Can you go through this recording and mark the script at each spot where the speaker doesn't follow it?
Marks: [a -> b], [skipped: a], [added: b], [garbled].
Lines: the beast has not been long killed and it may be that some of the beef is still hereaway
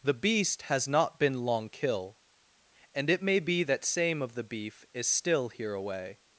the beast has not been long [killed -> kill] and it may be that [some -> same] of the beef is still hereaway